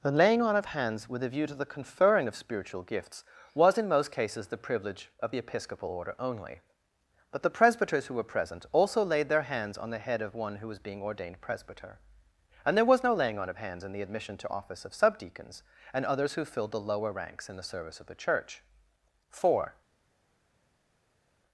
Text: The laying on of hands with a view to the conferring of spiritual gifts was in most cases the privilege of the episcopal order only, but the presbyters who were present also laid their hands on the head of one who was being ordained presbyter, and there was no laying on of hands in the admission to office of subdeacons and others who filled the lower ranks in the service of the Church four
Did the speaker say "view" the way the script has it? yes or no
yes